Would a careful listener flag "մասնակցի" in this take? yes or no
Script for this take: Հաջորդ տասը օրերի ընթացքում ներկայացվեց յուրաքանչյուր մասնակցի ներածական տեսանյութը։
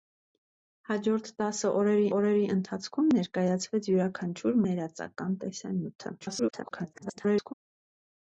yes